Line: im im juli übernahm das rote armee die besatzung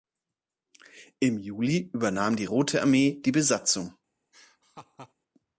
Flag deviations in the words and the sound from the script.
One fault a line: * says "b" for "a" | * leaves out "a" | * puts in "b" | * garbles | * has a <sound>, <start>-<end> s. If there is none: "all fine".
* leaves out "im"
* says "die" for "das"
* has a laugh, 4.3-5.1 s